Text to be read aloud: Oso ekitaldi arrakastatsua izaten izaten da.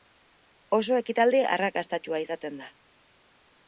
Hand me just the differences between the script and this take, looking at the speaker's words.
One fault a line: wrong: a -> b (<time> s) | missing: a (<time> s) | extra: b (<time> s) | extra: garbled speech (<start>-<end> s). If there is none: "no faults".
missing: izaten (2.6 s)